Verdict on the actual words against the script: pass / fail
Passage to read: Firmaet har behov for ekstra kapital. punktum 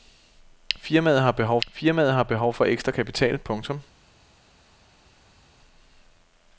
fail